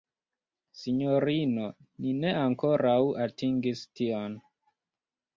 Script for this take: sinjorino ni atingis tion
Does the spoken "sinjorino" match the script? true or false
true